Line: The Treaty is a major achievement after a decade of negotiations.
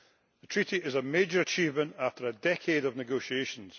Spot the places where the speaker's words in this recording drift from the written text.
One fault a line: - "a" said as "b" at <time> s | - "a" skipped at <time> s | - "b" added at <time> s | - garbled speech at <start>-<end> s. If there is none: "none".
none